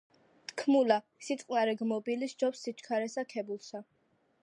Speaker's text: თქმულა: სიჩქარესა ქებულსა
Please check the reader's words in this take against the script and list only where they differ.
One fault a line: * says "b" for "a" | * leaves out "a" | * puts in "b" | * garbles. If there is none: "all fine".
* puts in "სიწყნარე გმობილი სჯობს"